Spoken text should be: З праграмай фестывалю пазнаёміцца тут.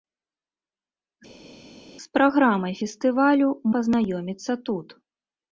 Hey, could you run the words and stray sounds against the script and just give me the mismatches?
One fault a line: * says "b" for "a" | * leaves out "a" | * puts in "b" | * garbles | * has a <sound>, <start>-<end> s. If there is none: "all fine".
all fine